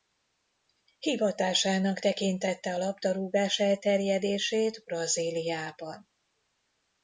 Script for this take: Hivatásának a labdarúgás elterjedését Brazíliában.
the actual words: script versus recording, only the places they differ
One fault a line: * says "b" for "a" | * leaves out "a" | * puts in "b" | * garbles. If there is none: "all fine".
* puts in "tekintette"